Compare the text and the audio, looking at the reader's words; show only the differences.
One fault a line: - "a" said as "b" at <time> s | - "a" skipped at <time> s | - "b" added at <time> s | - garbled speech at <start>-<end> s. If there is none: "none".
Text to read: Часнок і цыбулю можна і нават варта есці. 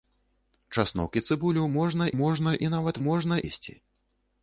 - "можна" added at 2.2 s
- "варта" said as "можна" at 3.1 s